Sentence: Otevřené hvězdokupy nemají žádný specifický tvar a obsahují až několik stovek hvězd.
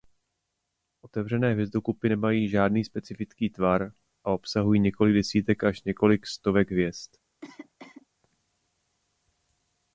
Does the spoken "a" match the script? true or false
true